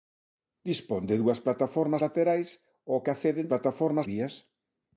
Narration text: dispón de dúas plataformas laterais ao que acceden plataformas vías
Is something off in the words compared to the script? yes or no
no